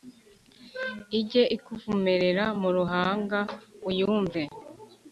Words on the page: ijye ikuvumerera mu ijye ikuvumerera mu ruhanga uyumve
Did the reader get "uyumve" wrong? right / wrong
right